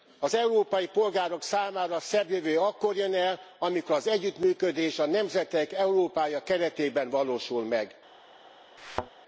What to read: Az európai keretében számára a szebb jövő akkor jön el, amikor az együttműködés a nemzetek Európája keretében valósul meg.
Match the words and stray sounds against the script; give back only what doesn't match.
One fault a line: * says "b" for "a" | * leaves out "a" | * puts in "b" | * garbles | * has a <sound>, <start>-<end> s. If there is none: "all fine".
* says "polgárok" for "keretében"
* has a thud, 8.8-9.1 s